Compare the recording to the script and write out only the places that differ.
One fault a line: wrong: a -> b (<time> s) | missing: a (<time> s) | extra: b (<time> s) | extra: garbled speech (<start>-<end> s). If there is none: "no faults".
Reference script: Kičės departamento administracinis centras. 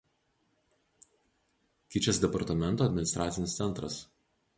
no faults